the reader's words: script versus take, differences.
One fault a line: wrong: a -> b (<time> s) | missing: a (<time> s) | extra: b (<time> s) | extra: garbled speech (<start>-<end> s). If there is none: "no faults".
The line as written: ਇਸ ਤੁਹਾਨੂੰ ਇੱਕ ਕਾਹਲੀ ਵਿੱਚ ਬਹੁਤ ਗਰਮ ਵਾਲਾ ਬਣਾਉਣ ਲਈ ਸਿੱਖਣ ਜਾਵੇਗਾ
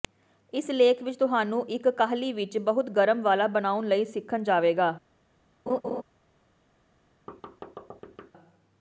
extra: ਲੇਖ ਵਿਚ (0.7 s)